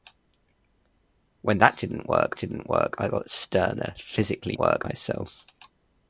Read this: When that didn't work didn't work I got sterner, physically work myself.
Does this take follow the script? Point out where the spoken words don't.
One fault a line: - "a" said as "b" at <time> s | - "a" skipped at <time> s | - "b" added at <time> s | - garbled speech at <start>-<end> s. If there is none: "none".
none